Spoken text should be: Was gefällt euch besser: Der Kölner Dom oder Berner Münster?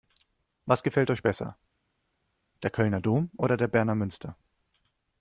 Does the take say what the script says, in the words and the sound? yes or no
no